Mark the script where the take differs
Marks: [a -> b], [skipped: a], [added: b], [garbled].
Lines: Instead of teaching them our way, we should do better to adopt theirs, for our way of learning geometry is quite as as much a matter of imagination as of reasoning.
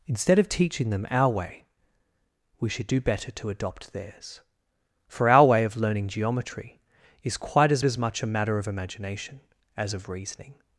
Instead of teaching them our way, we should do better to adopt theirs, for our way of learning geometry is quite as as much a matter of imagination as of reasoning.